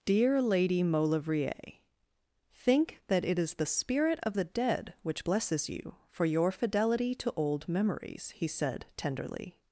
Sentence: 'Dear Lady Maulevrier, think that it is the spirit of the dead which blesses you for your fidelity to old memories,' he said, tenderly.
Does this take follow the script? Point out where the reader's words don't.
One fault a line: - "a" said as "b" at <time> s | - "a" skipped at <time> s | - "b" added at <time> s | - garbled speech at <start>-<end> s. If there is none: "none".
none